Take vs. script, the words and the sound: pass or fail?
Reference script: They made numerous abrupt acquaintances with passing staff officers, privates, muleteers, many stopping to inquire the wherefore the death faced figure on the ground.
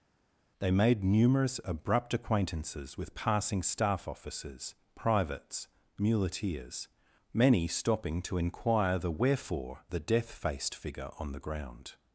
pass